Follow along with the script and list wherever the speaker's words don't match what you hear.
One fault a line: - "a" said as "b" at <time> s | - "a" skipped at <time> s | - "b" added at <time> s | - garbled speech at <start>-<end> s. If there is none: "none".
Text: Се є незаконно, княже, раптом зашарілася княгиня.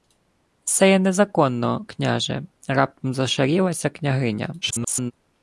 - garbled speech at 4.6-5.1 s